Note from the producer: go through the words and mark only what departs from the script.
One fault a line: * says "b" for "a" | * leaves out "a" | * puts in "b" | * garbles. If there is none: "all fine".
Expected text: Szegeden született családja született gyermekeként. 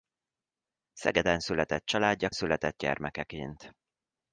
all fine